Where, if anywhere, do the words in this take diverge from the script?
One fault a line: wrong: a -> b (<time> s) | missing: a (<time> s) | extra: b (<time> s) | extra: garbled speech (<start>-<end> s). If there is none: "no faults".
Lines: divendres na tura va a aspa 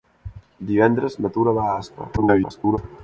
extra: garbled speech (2.2-2.8 s)